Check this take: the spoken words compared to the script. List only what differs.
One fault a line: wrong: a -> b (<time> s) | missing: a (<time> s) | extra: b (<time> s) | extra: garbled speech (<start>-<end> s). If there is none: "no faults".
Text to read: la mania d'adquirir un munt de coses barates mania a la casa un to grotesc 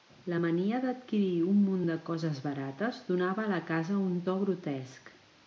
wrong: mania -> donava (3.1 s)